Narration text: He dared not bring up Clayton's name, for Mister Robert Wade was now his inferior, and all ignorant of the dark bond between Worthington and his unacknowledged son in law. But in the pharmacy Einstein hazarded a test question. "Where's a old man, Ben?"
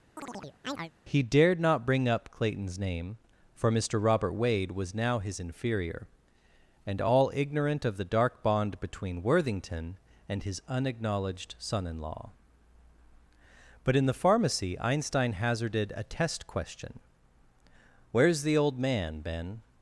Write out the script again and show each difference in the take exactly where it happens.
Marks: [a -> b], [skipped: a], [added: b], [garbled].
He dared not bring up Clayton's name, for Mister Robert Wade was now his inferior, and all ignorant of the dark bond between Worthington and his unacknowledged son in law. But in the pharmacy Einstein hazarded a test question. "Where's [a -> the] old man, Ben?"